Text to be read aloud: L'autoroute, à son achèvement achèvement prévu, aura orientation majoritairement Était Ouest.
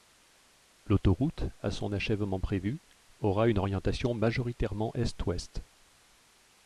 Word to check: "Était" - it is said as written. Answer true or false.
false